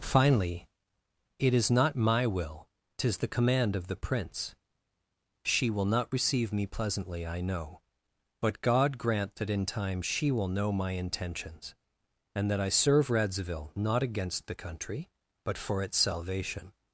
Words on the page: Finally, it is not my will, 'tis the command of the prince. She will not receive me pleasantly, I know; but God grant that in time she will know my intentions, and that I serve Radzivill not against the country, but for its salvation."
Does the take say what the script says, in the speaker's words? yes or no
yes